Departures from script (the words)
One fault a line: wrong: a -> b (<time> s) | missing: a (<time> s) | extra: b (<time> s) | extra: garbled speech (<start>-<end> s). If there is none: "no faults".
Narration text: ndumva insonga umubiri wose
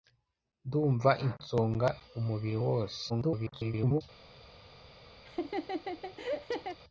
extra: garbled speech (3.1-4.0 s)